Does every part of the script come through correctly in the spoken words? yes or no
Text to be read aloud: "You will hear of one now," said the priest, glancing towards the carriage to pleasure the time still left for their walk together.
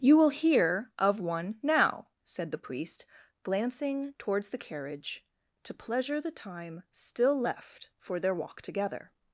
yes